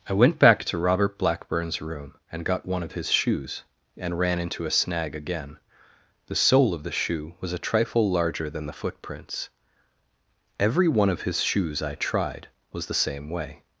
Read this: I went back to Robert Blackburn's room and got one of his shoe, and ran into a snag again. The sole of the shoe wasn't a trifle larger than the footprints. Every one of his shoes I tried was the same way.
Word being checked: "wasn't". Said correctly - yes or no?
no